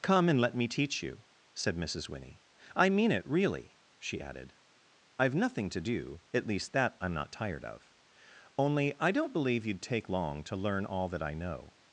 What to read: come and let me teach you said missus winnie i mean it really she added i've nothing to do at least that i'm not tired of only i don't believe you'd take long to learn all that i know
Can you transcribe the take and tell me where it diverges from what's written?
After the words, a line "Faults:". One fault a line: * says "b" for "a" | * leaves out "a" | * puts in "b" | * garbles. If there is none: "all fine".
come and let me teach you said missus winnie i mean it really she added i've nothing to do at least that i'm not tired of only i don't believe you'd take long to learn all that i know
Faults:
all fine